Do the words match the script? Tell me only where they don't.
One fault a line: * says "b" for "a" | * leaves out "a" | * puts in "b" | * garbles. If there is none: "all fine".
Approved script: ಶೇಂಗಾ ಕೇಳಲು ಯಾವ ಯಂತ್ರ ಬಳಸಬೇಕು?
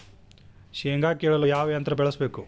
all fine